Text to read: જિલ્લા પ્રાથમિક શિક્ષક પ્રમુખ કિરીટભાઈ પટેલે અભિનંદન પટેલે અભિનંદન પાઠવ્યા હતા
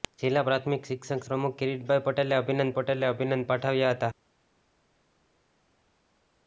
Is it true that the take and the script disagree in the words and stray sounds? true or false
false